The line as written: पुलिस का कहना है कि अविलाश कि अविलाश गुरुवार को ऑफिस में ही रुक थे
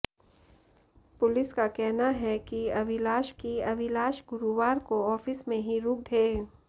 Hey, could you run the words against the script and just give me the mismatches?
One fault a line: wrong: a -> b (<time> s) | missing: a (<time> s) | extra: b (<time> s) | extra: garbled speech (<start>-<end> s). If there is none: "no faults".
no faults